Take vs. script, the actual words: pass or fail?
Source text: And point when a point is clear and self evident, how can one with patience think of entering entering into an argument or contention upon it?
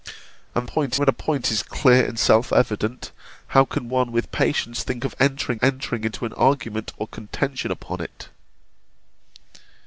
pass